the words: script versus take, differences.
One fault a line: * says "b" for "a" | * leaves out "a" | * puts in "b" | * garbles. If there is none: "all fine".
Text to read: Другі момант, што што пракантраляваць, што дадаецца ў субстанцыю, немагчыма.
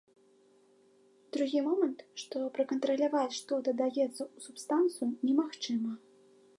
* leaves out "што"